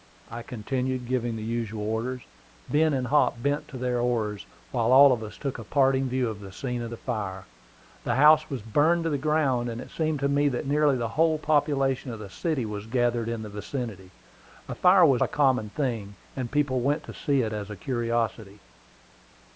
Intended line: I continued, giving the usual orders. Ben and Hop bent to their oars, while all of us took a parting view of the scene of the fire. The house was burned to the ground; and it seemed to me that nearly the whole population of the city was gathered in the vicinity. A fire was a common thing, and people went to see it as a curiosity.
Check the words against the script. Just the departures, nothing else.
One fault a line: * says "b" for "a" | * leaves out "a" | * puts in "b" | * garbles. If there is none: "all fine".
all fine